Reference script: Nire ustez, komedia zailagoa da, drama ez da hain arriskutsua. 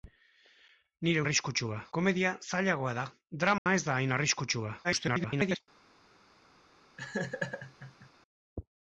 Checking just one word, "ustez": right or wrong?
wrong